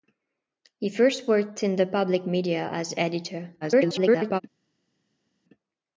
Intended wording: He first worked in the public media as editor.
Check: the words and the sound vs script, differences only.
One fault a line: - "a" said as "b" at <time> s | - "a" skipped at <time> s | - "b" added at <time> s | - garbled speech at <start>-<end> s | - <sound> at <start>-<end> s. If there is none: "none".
- garbled speech at 3.6-4.4 s